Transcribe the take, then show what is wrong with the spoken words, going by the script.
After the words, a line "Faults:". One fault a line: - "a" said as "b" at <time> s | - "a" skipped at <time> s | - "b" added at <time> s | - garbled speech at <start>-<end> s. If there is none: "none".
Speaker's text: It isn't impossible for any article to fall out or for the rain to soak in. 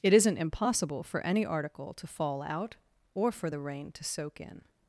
It isn't impossible for any article to fall out or for the rain to soak in.
Faults:
none